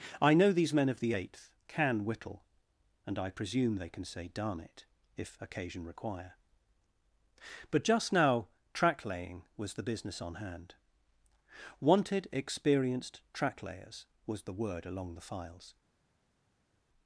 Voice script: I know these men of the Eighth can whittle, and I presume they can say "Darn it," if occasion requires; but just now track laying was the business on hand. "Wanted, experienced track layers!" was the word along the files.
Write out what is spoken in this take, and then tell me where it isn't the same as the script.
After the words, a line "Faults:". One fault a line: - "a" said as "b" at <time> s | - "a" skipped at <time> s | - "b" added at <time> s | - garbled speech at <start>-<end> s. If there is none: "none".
I know these men of the Eighth can whittle, and I presume they can say "Darn it," if occasion require; but just now track laying was the business on hand. "Wanted, experienced track layers!" was the word along the files.
Faults:
- "requires" said as "require" at 5.8 s